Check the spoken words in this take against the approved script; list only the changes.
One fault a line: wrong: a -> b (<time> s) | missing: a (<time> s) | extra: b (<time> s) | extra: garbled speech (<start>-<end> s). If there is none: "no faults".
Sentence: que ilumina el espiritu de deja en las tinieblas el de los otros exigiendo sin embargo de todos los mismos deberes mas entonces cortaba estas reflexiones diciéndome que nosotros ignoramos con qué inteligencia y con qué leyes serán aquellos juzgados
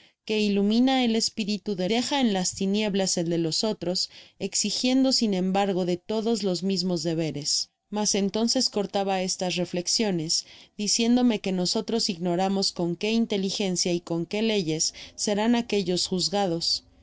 no faults